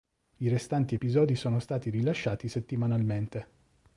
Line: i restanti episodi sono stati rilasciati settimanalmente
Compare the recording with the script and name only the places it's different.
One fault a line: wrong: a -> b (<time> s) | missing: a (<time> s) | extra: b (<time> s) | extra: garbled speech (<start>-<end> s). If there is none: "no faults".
no faults